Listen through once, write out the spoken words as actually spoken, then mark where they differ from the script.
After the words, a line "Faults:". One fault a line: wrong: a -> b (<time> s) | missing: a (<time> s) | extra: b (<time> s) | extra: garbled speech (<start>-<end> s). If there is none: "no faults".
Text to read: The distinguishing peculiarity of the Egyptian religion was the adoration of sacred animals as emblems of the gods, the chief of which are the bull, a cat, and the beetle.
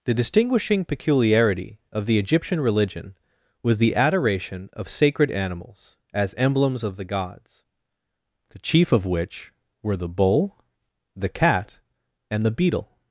The distinguishing peculiarity of the Egyptian religion was the adoration of sacred animals as emblems of the gods, the chief of which were the bull, the cat, and the beetle.
Faults:
wrong: are -> were (9.8 s)
wrong: a -> the (11.2 s)